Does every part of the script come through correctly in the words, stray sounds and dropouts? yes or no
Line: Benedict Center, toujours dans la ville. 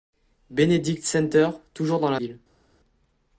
yes